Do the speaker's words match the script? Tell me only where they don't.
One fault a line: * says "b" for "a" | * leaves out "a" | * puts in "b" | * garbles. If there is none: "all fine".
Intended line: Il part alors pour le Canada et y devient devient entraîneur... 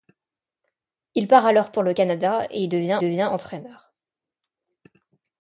all fine